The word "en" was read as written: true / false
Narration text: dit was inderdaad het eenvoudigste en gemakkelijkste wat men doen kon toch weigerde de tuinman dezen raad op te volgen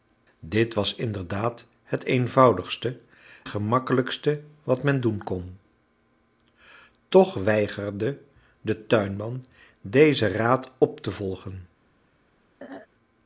false